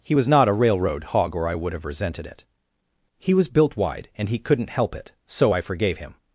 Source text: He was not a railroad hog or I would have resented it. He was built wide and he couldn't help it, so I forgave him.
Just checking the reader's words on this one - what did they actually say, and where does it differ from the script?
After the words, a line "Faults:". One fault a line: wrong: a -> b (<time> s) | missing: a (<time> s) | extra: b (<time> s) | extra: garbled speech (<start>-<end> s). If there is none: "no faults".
He was not a railroad hog or I would have resented it. He was built wide and he couldn't help it, so I forgave him.
Faults:
no faults